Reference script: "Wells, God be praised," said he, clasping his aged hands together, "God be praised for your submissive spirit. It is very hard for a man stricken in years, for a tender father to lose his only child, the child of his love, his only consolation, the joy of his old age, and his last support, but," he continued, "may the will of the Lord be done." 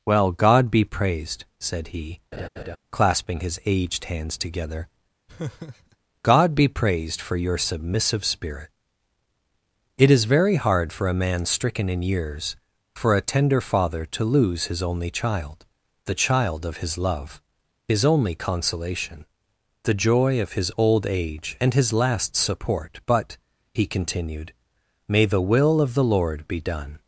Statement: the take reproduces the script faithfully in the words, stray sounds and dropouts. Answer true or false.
false